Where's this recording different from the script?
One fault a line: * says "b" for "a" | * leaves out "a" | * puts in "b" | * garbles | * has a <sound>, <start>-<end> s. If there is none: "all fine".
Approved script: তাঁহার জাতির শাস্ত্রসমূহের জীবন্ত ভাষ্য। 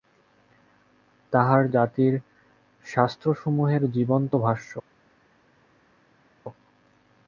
all fine